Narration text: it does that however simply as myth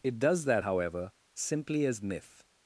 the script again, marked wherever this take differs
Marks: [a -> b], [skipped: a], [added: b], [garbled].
it does that however simply as myth